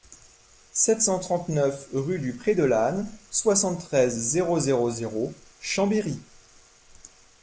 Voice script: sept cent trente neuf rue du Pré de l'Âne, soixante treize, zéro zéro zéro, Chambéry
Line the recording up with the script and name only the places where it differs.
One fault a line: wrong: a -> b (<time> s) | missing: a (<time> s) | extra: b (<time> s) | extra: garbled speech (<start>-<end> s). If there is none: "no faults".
no faults